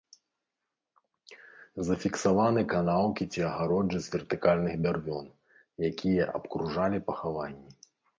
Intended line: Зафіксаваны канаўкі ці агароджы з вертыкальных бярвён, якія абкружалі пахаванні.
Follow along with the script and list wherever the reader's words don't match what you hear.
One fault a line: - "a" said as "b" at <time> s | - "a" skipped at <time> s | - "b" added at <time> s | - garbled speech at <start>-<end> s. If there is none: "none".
none